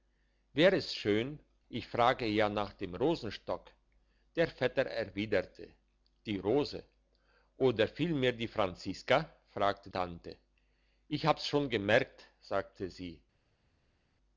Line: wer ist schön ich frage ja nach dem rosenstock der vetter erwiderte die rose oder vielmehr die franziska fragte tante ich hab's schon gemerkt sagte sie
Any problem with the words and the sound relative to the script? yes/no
no